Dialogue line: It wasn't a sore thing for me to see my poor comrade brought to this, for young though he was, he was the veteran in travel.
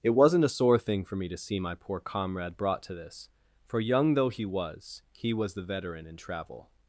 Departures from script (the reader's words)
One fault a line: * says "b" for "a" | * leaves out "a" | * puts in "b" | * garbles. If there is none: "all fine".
all fine